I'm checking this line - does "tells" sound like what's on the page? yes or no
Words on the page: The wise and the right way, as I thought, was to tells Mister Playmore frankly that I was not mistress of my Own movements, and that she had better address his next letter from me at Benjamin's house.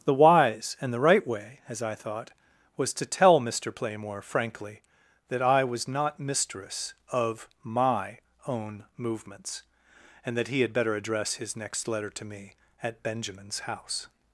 no